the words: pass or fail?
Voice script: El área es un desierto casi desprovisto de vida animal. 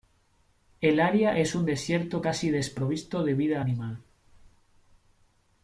pass